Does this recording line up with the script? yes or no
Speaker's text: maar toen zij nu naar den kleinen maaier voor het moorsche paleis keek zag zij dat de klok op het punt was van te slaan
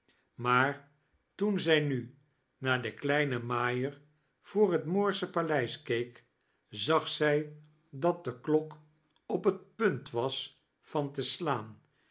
yes